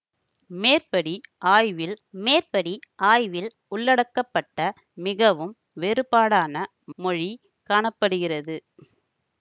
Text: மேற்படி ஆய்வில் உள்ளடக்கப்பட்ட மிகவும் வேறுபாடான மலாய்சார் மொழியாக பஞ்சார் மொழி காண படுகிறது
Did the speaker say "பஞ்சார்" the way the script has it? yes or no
no